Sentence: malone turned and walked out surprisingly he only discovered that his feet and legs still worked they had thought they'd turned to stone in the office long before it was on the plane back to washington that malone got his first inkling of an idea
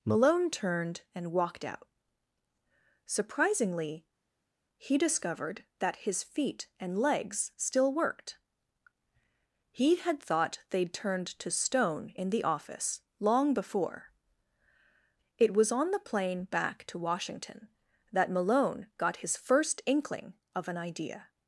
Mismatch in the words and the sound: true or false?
true